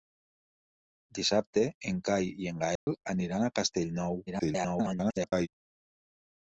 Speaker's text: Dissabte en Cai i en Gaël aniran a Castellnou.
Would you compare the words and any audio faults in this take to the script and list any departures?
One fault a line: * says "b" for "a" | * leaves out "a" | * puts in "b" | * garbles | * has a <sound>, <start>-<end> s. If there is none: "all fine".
* has a dropout, 2.8-2.9 s
* garbles